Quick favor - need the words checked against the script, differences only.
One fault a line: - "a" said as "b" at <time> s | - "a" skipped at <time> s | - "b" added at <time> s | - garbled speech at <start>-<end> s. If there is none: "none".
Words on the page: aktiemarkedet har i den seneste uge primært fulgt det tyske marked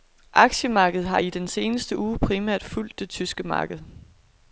none